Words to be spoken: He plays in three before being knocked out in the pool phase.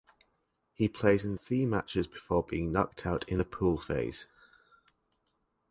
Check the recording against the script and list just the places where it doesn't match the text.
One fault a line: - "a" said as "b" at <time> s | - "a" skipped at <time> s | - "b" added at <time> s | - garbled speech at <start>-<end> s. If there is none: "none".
- "matches" added at 1.6 s